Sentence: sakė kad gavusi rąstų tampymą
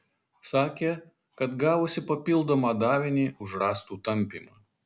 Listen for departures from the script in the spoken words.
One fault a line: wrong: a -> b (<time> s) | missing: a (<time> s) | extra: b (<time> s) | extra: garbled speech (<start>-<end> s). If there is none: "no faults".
extra: papildomą davinį už (2.1 s)